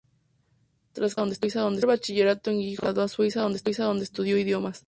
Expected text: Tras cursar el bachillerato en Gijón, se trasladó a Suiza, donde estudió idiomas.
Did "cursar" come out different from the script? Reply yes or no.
yes